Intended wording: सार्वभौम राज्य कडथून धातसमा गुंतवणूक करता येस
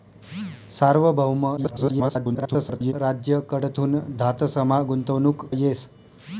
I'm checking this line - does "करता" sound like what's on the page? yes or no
no